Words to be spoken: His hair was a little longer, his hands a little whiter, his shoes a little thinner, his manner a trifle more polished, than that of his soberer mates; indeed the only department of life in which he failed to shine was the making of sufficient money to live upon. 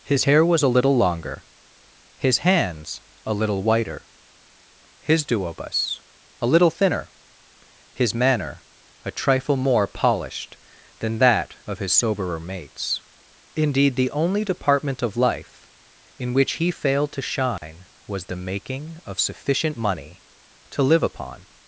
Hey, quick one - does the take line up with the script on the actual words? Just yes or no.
no